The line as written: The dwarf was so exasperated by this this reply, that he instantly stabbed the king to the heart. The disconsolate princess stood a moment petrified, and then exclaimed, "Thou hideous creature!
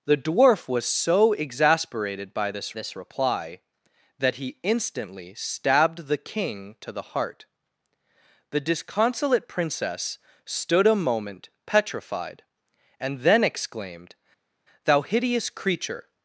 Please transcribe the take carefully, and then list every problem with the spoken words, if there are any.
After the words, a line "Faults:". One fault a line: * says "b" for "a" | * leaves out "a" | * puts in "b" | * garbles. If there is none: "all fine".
The dwarf was so exasperated by this this reply, that he instantly stabbed the king to the heart. The disconsolate princess stood a moment petrified, and then exclaimed, "Thou hideous creature!
Faults:
all fine